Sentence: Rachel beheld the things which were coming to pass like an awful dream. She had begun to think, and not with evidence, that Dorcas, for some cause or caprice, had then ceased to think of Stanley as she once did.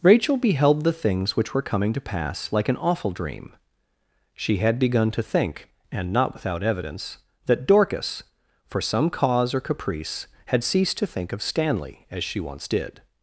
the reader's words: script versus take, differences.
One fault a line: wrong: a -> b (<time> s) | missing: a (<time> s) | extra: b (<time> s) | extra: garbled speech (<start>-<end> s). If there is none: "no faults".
wrong: with -> without (6.3 s)
missing: then (10.6 s)